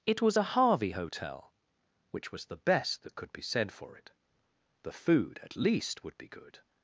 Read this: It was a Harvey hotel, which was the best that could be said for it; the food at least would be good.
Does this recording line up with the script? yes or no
yes